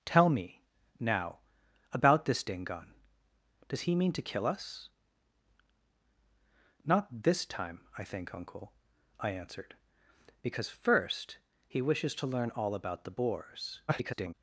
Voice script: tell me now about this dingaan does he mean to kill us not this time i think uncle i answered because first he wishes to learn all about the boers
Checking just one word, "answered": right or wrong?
right